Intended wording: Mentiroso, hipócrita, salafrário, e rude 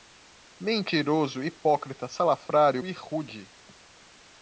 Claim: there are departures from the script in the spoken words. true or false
false